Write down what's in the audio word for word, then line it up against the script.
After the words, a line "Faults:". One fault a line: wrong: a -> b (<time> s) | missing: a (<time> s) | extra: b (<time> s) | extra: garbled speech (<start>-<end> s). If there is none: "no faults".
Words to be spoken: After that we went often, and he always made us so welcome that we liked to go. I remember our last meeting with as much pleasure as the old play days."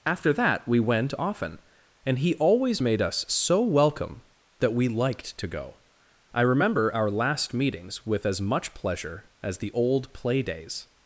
After that we went often, and he always made us so welcome that we liked to go. I remember our last meetings with as much pleasure as the old play days."
Faults:
wrong: meeting -> meetings (7.5 s)